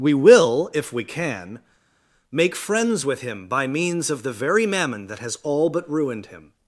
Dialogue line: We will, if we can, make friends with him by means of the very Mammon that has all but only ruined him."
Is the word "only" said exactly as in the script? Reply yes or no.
no